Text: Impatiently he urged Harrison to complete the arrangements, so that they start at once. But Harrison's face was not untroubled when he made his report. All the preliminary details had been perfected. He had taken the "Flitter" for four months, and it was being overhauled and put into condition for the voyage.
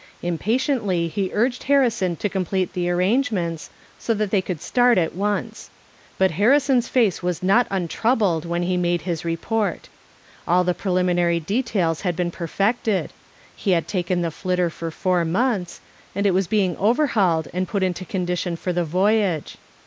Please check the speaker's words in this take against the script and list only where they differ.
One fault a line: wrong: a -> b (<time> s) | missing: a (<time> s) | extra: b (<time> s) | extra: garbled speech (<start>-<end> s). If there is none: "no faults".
extra: could (4.4 s)